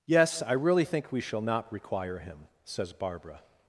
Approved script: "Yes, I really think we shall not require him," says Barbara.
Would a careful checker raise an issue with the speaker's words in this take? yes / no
no